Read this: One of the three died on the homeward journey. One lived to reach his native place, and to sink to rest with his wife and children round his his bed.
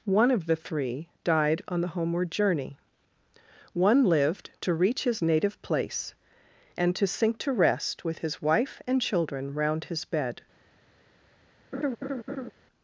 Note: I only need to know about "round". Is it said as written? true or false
true